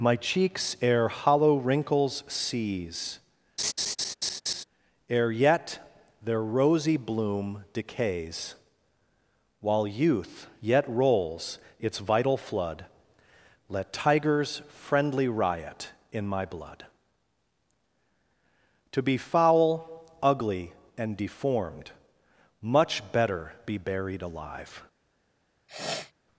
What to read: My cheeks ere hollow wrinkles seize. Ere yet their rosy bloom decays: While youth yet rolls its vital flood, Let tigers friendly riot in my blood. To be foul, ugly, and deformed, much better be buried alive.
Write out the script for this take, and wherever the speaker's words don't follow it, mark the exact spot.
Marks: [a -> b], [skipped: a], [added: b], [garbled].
My cheeks ere hollow wrinkles seize. Ere yet their rosy bloom decays: While youth yet rolls its vital flood, Let tigers friendly riot in my blood. To be foul, ugly, and deformed, much better be buried alive.